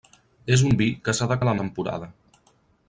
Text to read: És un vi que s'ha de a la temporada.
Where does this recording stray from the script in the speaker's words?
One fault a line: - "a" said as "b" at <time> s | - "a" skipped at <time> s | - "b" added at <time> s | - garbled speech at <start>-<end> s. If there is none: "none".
none